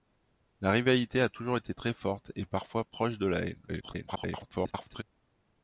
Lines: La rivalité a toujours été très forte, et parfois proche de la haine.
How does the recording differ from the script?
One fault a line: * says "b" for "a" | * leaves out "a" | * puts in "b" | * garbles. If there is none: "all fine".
* garbles